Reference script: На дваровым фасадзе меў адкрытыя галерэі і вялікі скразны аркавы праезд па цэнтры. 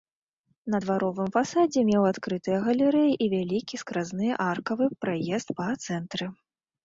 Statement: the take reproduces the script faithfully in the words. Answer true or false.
true